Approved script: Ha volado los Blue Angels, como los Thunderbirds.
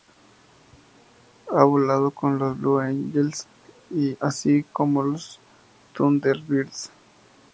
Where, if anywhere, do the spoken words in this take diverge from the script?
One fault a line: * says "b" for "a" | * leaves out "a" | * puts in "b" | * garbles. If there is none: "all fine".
* puts in "con"
* puts in "así"